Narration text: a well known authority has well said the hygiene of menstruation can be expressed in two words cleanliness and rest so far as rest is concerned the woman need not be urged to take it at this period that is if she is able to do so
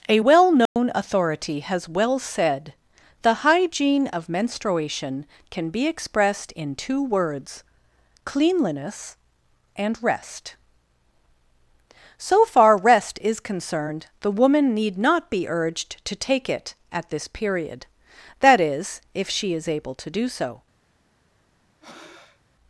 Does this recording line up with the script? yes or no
no